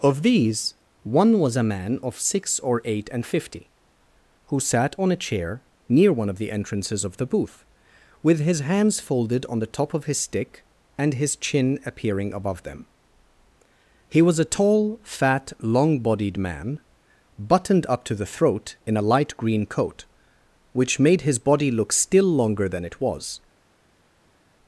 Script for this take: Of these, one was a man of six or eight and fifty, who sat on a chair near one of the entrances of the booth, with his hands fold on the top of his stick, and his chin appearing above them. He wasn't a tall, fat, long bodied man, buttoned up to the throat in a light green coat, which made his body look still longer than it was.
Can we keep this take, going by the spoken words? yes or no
no